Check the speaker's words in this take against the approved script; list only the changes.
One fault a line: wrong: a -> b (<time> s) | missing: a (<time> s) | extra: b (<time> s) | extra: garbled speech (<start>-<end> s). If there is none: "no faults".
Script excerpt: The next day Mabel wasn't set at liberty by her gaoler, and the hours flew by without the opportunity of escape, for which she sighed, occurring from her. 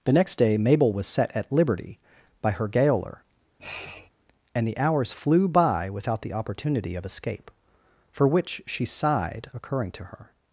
wrong: wasn't -> was (0.9 s)
wrong: from -> to (9.9 s)